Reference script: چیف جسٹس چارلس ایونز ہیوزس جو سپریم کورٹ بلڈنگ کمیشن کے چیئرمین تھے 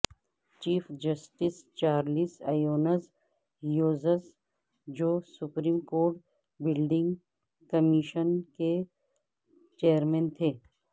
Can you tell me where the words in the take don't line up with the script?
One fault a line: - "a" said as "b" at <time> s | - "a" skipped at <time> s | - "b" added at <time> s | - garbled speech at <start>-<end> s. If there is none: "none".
none